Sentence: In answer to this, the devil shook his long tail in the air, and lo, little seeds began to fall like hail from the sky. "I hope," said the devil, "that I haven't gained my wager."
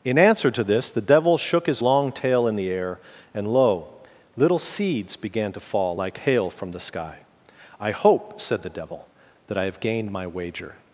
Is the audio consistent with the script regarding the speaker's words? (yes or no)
no